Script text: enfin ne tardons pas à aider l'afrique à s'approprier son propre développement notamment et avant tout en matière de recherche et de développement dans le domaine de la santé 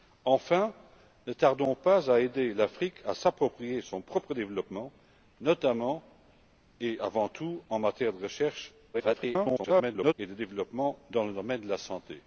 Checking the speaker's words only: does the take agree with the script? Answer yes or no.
no